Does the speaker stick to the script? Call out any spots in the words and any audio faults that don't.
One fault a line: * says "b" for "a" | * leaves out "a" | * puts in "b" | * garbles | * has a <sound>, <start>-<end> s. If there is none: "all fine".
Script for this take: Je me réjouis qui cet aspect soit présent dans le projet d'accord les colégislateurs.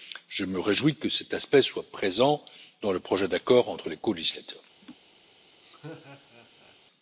* says "que" for "qui"
* puts in "entre"
* has a laugh, 4.8-5.0 s
* has a laugh, 5.6-6.8 s